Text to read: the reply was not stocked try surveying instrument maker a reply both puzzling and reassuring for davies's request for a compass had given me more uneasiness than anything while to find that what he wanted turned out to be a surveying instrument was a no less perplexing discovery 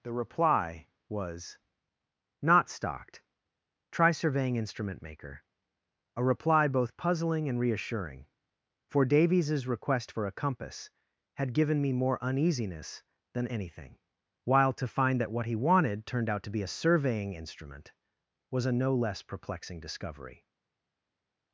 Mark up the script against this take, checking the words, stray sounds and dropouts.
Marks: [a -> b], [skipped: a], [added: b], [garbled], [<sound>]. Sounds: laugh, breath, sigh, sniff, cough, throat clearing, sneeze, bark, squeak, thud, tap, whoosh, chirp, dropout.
the reply was not stocked try surveying instrument maker a reply both puzzling and reassuring for davies's request for a compass had given me more uneasiness than anything while to find that what he wanted turned out to be a surveying instrument was a no less perplexing discovery